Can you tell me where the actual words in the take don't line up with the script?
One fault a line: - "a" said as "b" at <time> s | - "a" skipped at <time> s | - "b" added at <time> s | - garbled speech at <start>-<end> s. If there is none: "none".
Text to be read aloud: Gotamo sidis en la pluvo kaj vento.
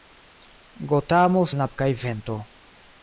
- "sidis" skipped at 1.4 s
- "pluvo" skipped at 1.7 s